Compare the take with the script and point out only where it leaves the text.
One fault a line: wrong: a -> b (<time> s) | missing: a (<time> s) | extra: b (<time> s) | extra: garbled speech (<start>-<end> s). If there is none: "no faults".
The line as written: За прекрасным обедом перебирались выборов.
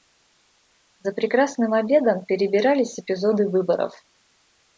extra: эпизоды (3.0 s)